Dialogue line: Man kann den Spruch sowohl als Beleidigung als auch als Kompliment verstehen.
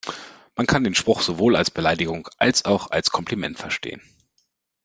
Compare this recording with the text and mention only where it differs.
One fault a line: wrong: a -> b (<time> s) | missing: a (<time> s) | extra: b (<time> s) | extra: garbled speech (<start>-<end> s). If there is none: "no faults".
no faults